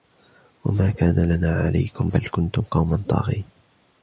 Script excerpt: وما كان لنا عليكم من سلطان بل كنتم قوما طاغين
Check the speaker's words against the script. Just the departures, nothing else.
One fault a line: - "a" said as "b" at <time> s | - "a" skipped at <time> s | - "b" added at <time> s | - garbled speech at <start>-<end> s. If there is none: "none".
- "من سلطان" skipped at 2.1 s